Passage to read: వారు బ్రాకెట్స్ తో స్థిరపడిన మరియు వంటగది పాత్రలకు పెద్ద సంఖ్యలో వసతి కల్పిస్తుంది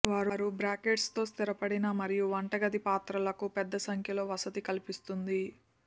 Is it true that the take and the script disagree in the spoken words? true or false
false